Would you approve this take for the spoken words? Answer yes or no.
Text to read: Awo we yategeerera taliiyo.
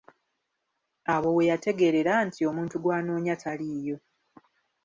no